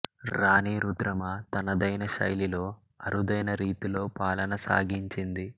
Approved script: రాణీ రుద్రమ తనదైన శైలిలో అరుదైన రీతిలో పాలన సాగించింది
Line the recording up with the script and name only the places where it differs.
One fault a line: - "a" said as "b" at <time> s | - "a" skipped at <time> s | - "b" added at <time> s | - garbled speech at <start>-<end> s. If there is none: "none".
none